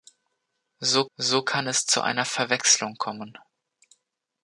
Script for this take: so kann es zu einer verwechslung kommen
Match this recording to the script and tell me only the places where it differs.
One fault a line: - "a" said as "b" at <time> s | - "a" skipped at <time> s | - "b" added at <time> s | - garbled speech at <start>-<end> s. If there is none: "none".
- "so" added at 1.2 s